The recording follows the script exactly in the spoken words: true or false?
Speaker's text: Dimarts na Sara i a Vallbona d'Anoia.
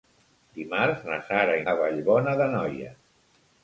true